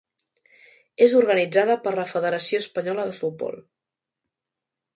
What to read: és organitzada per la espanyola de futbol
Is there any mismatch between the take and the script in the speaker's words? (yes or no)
yes